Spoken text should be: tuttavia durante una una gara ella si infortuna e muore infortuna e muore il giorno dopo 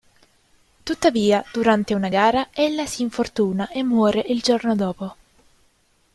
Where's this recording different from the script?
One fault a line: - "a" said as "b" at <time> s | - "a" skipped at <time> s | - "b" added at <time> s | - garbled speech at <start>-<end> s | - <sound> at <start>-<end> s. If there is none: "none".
- "una" skipped at 2.1 s
- "infortuna e muore" skipped at 4.2 s